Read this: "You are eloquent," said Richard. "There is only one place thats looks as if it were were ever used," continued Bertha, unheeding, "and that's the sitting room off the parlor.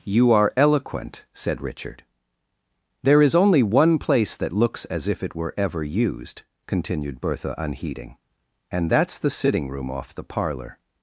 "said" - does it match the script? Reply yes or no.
yes